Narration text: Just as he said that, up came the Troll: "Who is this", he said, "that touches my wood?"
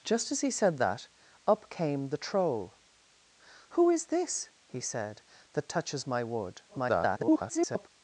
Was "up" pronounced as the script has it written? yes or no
yes